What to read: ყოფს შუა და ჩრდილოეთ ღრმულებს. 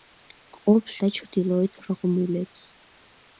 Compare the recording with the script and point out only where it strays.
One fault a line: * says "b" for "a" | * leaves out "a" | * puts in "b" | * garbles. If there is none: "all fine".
* leaves out "შუა"